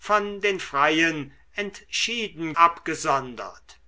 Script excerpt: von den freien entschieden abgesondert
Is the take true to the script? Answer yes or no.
yes